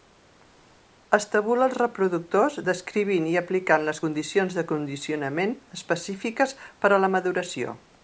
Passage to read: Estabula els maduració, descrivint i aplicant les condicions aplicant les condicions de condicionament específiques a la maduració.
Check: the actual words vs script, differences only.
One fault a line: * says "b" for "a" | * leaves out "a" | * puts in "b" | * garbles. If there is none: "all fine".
* says "reproductors" for "maduració"
* leaves out "aplicant les condicions"
* puts in "per"